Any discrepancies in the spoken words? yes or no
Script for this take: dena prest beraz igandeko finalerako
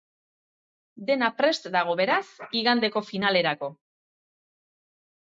yes